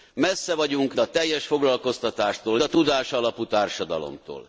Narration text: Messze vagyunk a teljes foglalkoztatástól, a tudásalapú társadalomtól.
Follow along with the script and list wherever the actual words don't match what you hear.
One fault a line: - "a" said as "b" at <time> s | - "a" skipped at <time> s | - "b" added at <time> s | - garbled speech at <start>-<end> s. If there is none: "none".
none